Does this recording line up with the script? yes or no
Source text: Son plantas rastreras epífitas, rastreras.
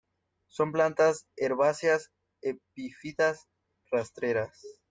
no